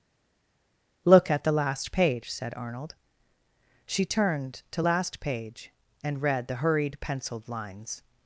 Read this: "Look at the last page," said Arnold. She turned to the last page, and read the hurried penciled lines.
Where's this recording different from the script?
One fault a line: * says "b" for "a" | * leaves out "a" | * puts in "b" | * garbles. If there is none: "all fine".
* leaves out "the"